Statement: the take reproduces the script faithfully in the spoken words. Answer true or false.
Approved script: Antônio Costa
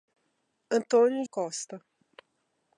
true